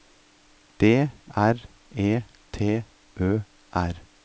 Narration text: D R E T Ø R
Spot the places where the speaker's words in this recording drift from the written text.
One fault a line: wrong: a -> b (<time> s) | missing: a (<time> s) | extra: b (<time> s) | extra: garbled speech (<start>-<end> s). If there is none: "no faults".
no faults